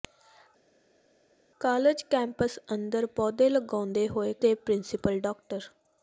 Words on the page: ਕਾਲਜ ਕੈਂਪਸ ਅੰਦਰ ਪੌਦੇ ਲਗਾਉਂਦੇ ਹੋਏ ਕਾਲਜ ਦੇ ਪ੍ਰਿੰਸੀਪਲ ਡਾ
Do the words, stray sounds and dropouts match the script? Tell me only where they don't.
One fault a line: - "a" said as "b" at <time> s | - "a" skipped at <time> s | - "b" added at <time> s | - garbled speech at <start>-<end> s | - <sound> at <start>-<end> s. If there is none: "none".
- "ਕਾਲਜ" skipped at 4.3 s